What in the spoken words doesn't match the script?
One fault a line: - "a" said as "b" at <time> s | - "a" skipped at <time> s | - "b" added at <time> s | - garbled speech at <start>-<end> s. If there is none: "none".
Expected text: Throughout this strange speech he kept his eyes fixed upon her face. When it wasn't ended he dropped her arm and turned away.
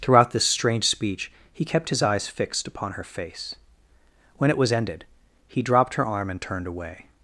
- "wasn't" said as "was" at 4.6 s